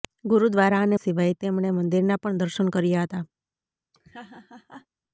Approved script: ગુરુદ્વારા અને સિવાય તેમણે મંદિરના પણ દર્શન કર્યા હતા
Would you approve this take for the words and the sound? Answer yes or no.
no